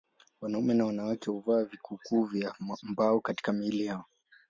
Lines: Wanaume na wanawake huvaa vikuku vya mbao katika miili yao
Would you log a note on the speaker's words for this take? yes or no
no